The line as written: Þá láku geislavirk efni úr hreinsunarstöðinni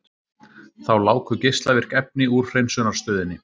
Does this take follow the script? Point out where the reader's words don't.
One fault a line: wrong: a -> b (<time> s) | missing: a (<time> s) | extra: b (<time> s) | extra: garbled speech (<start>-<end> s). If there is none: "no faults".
no faults